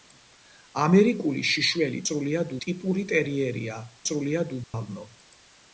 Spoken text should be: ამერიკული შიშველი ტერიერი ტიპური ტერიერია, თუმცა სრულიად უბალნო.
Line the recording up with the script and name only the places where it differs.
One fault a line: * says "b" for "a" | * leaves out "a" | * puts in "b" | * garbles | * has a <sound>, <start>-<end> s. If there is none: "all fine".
* says "სრულიად" for "ტერიერი"
* leaves out "თუმცა"
* has a dropout, 4.6-4.7 s